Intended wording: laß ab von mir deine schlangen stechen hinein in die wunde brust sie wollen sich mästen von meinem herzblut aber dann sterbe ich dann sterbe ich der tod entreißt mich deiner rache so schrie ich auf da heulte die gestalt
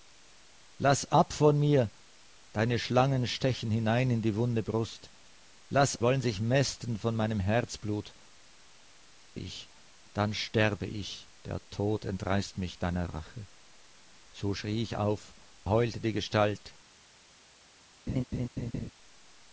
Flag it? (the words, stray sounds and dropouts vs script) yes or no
yes